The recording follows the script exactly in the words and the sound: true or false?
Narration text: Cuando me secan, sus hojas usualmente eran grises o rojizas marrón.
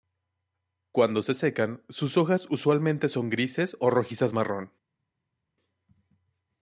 false